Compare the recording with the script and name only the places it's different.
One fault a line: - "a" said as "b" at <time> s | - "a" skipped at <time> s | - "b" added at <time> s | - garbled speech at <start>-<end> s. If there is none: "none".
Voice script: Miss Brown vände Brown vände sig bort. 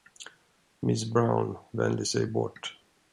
- "Brown vände" skipped at 2.0 s